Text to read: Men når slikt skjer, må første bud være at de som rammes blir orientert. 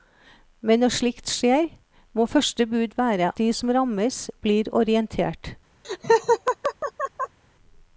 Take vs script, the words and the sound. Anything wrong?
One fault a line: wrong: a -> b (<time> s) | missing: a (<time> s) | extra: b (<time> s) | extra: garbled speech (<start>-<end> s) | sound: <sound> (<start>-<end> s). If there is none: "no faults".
missing: at (3.3 s)
sound: laugh (5.8-7.4 s)